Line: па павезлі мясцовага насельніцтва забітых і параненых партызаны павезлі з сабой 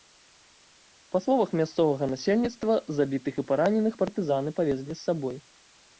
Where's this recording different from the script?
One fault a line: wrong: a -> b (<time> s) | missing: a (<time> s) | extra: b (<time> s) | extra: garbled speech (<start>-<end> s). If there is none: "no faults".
wrong: павезлі -> словах (1.2 s)